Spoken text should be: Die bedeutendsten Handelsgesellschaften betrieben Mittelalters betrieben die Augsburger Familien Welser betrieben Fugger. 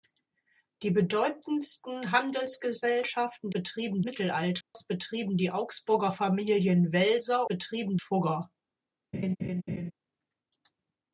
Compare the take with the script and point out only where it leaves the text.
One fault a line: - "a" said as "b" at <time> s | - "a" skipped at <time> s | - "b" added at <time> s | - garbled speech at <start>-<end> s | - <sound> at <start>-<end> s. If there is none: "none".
- dropout at 4.6-4.7 s
- laugh at 9.1-9.9 s